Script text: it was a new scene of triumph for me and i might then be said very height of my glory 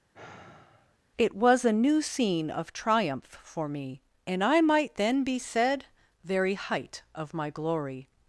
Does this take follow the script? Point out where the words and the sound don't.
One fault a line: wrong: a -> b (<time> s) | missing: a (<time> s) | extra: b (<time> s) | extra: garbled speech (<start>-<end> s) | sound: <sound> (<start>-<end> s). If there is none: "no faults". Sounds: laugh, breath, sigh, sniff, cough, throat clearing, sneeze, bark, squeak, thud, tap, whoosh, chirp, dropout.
sound: sigh (0.1-1.0 s)